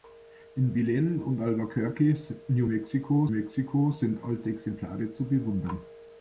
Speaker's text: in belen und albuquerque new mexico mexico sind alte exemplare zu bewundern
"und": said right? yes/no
yes